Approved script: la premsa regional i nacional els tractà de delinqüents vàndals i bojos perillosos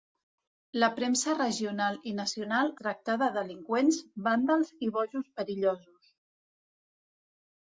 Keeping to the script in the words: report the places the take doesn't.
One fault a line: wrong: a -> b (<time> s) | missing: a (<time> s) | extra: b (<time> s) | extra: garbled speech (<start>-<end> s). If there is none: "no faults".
missing: els (2.7 s)